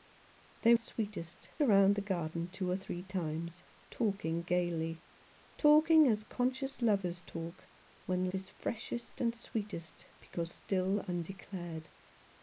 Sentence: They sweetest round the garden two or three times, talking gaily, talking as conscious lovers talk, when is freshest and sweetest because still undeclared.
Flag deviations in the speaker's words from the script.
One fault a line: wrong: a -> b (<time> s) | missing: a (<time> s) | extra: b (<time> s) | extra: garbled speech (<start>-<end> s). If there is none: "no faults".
no faults